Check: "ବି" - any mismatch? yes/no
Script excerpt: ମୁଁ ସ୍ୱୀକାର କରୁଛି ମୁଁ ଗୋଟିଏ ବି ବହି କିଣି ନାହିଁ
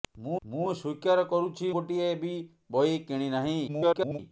no